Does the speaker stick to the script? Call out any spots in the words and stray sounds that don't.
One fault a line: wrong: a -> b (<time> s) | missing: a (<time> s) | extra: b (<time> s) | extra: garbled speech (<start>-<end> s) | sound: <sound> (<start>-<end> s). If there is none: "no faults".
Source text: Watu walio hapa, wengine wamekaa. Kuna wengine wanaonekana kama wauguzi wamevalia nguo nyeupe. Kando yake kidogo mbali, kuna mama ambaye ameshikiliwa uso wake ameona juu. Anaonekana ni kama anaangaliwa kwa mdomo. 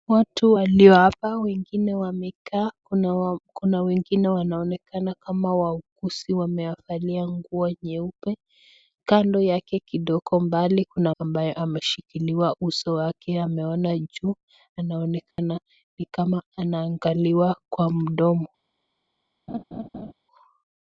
missing: mama (11.2 s)
sound: dropout (15.3-15.4 s)
sound: laugh (19.5-20.1 s)